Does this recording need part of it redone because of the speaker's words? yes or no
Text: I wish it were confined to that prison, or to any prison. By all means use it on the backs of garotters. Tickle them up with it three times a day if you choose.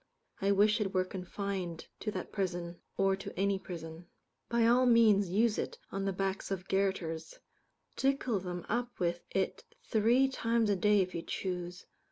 no